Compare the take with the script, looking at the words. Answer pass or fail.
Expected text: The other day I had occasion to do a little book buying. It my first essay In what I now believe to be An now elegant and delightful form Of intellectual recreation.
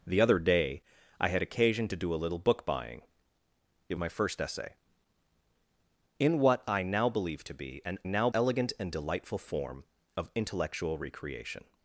pass